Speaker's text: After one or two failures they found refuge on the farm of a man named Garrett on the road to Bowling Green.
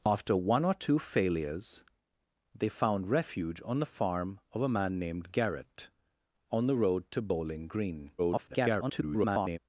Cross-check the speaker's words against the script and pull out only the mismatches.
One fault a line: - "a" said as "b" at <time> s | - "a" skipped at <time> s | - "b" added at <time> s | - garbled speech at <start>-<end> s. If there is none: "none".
- garbled speech at 8.2-9.6 s